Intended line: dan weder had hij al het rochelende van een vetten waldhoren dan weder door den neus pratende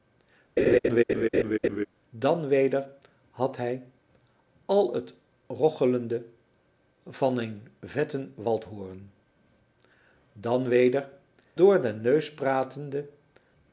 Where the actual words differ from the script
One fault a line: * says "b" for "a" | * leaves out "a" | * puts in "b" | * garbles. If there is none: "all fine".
all fine